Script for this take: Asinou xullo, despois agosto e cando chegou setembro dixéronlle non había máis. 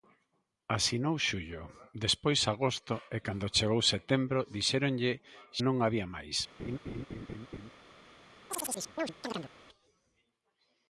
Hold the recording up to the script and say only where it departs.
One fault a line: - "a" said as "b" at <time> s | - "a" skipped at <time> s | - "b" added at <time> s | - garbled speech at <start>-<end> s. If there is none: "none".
none